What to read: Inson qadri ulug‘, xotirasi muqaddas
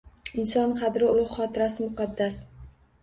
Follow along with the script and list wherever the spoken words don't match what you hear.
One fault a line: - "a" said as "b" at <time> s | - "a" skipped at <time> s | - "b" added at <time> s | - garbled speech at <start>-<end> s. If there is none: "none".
none